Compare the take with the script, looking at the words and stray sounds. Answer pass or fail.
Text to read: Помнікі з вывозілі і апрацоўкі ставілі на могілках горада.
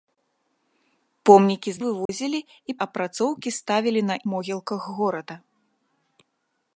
fail